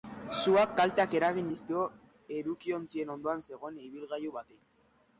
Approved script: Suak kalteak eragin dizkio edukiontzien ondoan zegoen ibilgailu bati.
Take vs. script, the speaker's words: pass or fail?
pass